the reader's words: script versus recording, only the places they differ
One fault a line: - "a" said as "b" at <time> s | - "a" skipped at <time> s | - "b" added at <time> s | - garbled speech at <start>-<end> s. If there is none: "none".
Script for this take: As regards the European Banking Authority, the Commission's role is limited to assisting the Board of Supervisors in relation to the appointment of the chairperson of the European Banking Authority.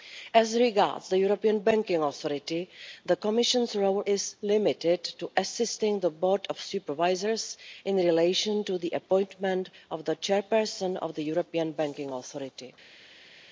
none